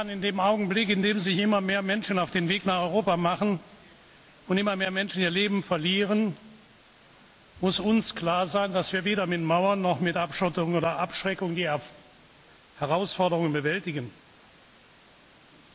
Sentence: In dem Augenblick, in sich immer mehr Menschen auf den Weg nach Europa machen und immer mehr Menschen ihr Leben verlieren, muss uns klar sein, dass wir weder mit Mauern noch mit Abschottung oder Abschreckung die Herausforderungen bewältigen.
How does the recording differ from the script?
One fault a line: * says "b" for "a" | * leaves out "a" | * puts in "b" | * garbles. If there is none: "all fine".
* puts in "dem"